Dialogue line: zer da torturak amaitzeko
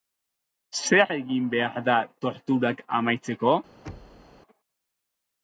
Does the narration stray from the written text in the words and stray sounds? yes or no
yes